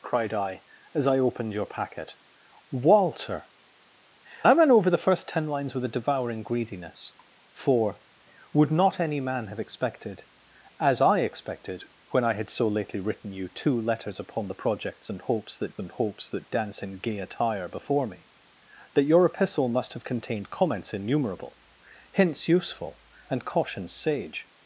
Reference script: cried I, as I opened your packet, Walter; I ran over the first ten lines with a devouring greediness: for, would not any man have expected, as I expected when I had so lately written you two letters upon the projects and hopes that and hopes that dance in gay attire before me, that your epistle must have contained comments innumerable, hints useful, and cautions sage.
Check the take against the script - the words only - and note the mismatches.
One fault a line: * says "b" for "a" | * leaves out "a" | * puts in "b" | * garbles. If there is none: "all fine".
all fine